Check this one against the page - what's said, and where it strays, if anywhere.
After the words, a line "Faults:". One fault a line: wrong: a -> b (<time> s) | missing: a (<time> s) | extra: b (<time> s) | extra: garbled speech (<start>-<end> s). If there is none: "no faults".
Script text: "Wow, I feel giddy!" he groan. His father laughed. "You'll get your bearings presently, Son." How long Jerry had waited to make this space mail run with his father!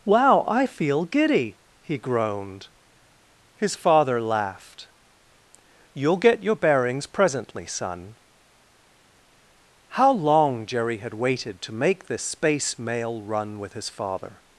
"Wow, I feel giddy!" he groaned. His father laughed. "You'll get your bearings presently, Son." How long Jerry had waited to make this space mail run with his father!
Faults:
wrong: groan -> groaned (2.0 s)